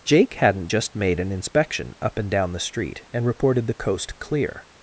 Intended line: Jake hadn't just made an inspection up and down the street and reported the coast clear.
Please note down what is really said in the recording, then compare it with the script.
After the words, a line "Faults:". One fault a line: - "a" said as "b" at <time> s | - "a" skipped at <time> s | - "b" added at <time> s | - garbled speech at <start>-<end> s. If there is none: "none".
Jake hadn't just made an inspection up and down the street and reported the coast clear.
Faults:
none